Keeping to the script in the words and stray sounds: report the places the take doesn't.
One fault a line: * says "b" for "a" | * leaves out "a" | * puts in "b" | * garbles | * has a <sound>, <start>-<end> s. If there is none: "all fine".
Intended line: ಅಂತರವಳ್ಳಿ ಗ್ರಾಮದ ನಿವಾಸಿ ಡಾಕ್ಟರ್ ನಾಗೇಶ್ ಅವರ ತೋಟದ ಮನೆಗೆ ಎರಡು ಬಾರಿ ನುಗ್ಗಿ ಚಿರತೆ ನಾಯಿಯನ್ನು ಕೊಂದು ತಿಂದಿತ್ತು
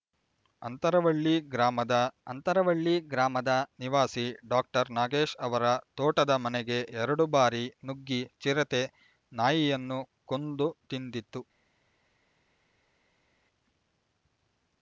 * puts in "ಅಂತರವಳ್ಳಿ ಗ್ರಾಮದ"